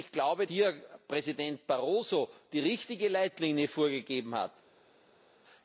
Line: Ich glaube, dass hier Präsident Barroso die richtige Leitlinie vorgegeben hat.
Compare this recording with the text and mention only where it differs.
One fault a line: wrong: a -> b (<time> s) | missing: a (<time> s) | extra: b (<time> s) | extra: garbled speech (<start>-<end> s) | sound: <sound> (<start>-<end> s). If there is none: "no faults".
missing: dass (0.5 s)